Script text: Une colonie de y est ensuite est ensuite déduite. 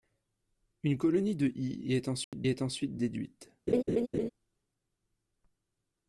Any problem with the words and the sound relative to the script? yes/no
yes